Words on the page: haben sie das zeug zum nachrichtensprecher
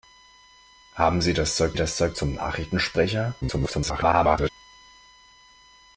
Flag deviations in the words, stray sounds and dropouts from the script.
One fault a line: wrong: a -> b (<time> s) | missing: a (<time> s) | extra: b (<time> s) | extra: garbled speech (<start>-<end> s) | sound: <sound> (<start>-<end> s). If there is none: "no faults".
extra: das zeug (1.7 s)
extra: garbled speech (3.4-4.5 s)